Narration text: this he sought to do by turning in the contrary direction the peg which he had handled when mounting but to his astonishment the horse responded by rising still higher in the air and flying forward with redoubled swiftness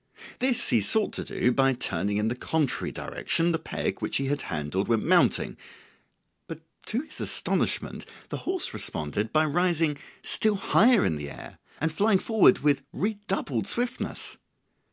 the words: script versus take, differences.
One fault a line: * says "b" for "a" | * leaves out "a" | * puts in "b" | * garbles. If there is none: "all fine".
all fine